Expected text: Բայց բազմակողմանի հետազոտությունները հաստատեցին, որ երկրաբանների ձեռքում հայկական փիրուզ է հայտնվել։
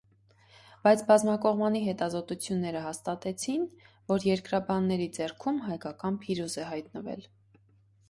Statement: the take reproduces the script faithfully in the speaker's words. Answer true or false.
true